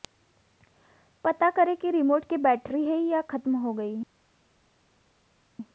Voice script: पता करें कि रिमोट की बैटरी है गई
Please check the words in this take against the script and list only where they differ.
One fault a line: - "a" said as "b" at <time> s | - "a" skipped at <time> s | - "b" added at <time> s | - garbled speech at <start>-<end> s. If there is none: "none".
- "या खत्म हो" added at 3.0 s